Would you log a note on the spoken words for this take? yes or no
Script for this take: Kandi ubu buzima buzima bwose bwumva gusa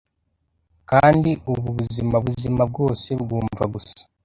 no